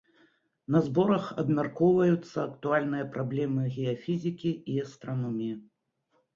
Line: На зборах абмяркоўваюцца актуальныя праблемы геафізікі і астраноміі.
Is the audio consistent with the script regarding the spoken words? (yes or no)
yes